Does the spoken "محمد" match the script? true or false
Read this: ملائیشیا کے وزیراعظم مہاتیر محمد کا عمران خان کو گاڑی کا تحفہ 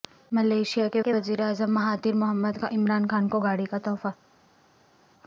true